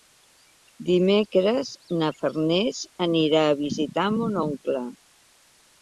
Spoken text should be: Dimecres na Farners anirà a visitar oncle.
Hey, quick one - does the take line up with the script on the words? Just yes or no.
no